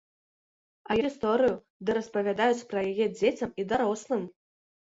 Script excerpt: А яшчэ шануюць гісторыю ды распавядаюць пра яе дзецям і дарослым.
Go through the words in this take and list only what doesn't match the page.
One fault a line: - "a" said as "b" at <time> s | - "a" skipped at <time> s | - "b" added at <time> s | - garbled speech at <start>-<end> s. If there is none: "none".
- "яшчэ шануюць" skipped at 0.9 s